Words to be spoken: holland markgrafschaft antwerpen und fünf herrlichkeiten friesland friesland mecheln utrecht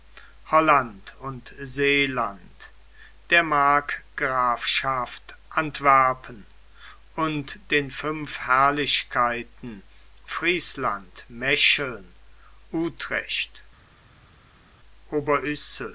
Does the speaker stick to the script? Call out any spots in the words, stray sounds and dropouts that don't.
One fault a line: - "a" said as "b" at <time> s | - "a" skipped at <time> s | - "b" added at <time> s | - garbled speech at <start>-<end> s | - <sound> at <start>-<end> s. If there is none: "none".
- "und seeland der" added at 1.2 s
- "den" added at 7.7 s
- "friesland" skipped at 11.3 s